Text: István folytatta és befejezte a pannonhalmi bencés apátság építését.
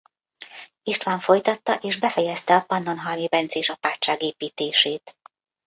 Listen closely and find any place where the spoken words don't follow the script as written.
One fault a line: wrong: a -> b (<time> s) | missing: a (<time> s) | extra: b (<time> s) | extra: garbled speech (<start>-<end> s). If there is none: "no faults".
no faults